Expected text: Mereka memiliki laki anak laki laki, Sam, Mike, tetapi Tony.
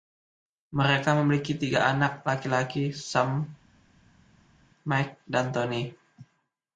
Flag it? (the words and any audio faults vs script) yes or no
yes